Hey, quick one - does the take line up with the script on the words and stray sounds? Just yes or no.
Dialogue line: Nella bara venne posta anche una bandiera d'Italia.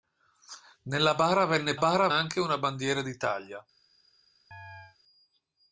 no